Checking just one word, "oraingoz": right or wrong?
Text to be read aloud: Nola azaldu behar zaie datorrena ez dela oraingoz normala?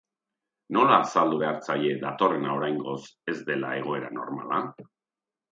wrong